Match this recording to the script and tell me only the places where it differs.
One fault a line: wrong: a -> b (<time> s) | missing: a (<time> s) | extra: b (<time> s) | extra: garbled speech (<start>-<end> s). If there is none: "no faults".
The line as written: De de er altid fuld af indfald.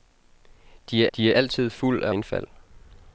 no faults